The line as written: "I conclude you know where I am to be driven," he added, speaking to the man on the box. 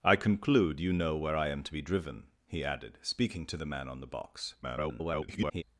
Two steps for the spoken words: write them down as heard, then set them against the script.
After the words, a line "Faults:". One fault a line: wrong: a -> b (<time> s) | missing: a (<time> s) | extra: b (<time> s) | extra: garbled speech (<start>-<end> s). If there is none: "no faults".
"I conclude you know where I am to be driven," he added, speaking to the man on the box. [garbled]
Faults:
extra: garbled speech (4.6-5.6 s)